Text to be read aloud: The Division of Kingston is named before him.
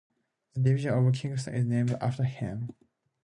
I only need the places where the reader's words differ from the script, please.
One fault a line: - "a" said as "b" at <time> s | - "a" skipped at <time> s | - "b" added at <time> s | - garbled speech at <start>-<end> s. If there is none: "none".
- "before" said as "after" at 2.0 s